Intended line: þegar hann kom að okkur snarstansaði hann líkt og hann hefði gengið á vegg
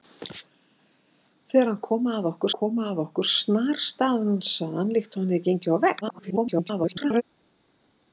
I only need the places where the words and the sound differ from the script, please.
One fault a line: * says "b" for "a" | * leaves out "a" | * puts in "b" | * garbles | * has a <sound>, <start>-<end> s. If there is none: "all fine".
* puts in "kom að okkur"
* garbles